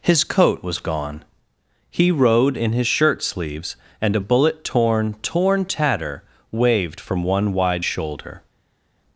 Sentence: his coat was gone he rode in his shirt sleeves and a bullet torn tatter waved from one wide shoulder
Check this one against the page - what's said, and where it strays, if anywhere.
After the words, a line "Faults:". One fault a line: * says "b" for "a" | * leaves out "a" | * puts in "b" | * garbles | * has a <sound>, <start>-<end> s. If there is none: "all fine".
his coat was gone he rode in his shirt sleeves and a bullet torn torn tatter waved from one wide shoulder
Faults:
* puts in "torn"